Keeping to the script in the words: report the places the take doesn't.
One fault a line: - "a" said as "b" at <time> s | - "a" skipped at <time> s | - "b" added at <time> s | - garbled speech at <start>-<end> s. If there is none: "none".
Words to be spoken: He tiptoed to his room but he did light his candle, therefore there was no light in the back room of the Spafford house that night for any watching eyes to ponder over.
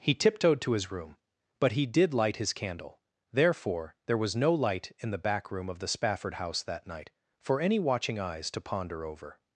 none